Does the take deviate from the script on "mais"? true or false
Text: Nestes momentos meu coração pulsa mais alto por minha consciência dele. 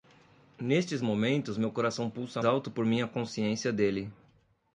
true